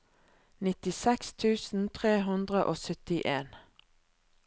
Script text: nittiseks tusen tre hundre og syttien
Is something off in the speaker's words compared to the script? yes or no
no